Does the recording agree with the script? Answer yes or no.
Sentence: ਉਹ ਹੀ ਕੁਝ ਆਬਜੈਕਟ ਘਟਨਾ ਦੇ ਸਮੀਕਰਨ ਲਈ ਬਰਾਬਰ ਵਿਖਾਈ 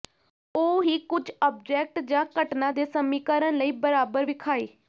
no